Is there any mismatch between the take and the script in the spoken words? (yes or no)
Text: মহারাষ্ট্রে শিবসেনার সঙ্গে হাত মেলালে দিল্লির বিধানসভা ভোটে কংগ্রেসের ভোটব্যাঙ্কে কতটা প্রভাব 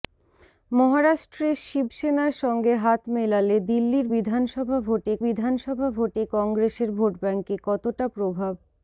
yes